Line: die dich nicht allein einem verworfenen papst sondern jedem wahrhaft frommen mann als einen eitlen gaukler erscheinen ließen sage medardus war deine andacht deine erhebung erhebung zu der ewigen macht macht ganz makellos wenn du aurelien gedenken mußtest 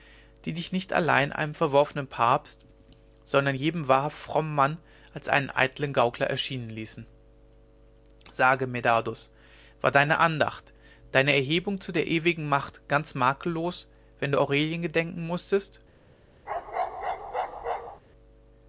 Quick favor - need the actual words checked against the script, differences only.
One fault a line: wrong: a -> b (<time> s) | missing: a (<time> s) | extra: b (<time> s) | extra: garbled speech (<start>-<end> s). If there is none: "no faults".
missing: erhebung (11.8 s)
missing: macht (12.9 s)